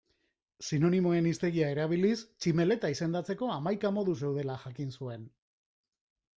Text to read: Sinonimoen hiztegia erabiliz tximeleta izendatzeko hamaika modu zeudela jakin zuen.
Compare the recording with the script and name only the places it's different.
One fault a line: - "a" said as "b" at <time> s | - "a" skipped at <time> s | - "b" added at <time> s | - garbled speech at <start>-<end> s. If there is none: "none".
none